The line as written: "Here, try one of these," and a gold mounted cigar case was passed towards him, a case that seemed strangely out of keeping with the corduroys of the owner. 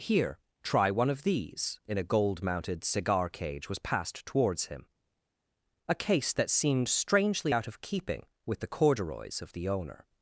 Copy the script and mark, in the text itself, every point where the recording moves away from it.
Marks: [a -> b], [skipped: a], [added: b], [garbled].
"Here, try one of these," [and -> in] a gold mounted cigar [case -> cage] was passed towards him, a case that seemed strangely out of keeping with the corduroys of the owner.